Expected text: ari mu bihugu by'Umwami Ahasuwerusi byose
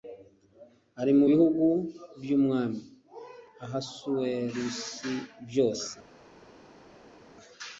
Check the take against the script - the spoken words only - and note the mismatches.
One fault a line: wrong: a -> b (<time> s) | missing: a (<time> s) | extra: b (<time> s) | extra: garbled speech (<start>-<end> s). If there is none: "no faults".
no faults